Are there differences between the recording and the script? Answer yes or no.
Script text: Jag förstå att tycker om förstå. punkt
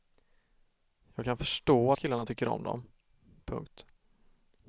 yes